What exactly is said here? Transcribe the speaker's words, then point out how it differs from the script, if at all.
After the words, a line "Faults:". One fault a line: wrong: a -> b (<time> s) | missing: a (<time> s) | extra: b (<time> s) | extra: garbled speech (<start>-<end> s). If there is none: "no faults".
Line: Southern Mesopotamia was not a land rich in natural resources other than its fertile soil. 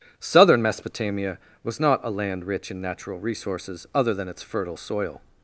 Southern Mesopotamia was not a land rich in natural resources other than its fertile soil.
Faults:
no faults